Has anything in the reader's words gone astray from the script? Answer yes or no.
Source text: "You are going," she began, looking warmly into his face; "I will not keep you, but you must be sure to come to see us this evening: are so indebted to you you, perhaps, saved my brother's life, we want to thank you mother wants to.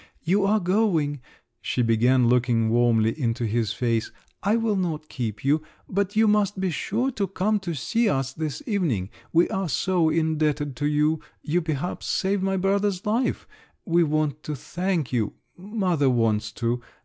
yes